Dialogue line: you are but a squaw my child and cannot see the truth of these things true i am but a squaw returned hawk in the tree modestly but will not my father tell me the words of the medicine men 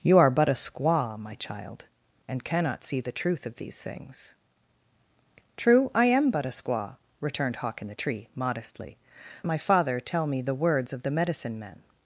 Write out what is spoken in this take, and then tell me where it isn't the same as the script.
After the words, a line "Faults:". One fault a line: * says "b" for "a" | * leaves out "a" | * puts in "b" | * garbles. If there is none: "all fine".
you are but a squaw my child and cannot see the truth of these things true i am but a squaw returned hawk in the tree modestly my father tell me the words of the medicine men
Faults:
* leaves out "but will not"